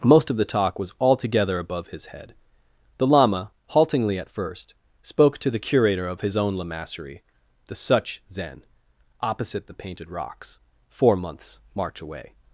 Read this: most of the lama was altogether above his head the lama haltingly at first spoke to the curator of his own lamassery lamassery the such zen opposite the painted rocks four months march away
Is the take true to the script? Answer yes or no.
no